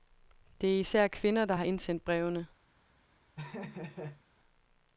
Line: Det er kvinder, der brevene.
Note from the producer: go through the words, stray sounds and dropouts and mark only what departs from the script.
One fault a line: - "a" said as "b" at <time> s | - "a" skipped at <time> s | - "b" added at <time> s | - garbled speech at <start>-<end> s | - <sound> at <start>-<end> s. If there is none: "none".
- "især" added at 0.8 s
- "har indsendt" added at 1.5 s
- laugh at 3.4-4.2 s